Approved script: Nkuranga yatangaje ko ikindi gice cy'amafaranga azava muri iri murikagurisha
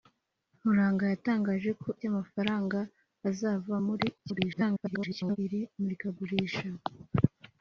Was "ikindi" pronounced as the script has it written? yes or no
no